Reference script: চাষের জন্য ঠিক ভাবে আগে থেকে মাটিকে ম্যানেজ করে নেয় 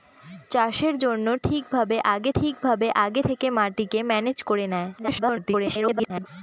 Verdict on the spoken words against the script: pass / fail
fail